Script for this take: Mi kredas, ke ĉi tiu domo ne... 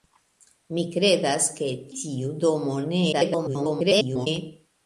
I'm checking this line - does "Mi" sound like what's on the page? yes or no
yes